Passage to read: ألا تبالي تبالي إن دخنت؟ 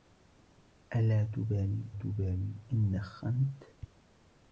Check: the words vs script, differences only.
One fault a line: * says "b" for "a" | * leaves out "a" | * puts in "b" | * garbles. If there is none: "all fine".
all fine